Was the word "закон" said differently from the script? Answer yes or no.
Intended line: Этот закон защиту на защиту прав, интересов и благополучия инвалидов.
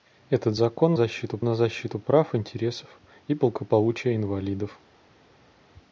no